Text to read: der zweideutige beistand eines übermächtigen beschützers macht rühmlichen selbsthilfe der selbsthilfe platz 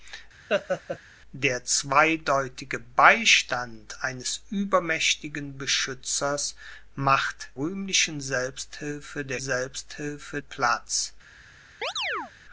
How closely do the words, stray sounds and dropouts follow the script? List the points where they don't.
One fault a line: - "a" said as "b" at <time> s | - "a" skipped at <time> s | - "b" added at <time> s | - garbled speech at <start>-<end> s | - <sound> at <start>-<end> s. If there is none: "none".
- laugh at 0.5-1.0 s
- chirp at 11.8-12.3 s